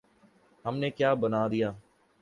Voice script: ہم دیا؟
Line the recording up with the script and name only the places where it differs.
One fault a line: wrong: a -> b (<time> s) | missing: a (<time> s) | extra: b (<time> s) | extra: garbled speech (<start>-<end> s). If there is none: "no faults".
extra: نے کیا بنا (0.8 s)